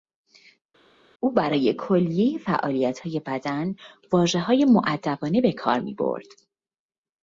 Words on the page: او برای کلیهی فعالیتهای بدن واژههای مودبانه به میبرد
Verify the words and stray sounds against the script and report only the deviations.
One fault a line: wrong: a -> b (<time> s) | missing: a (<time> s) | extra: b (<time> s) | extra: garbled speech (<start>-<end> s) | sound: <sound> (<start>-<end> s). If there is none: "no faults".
extra: کار (5.5 s)